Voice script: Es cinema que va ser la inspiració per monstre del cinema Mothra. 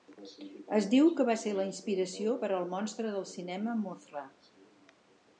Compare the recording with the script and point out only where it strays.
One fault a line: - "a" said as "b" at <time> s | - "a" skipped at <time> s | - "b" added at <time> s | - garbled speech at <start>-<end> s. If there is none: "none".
- "cinema" said as "diu" at 0.9 s
- "al" added at 2.6 s